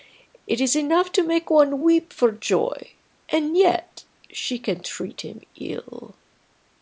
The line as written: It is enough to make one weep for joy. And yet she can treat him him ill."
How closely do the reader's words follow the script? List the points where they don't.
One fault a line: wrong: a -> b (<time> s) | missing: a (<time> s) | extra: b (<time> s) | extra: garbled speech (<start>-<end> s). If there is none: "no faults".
missing: him (5.4 s)